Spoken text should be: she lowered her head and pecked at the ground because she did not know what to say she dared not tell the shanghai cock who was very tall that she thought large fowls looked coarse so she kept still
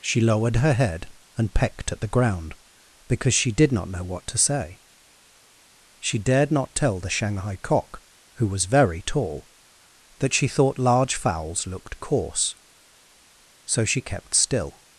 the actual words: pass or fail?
pass